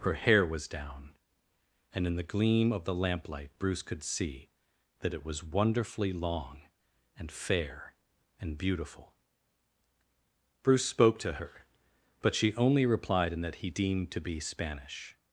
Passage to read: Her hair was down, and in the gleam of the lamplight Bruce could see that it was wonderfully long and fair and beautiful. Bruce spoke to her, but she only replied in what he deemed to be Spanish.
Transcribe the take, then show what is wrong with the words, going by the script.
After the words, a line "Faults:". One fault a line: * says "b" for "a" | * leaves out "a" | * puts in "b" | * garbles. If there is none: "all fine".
Her hair was down, and in the gleam of the lamplight Bruce could see that it was wonderfully long and fair and beautiful. Bruce spoke to her, but she only replied in that he deemed to be Spanish.
Faults:
* says "that" for "what"